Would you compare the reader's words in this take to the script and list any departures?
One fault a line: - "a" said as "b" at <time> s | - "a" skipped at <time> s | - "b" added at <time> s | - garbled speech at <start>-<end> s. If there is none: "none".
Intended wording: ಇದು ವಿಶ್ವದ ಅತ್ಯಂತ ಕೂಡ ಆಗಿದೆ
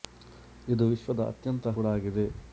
none